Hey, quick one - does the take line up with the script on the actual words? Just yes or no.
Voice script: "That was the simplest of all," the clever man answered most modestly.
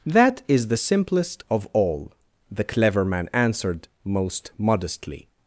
no